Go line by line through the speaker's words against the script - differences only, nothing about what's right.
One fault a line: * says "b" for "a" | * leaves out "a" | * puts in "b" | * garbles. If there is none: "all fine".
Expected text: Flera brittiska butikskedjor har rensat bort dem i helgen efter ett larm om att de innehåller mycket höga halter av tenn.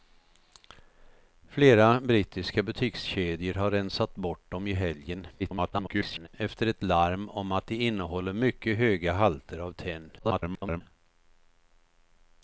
* garbles
* garbles